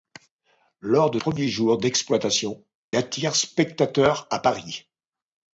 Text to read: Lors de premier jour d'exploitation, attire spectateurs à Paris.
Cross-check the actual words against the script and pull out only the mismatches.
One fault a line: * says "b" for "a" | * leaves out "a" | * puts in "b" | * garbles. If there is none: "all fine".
all fine